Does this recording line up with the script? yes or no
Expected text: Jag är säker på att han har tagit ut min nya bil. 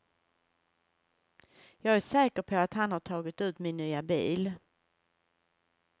yes